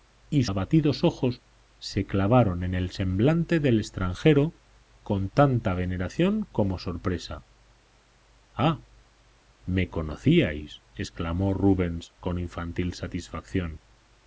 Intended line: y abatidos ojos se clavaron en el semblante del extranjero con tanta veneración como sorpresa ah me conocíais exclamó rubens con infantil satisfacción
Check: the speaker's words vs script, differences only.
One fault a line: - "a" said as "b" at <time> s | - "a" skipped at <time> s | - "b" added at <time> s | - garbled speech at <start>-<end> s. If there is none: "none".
none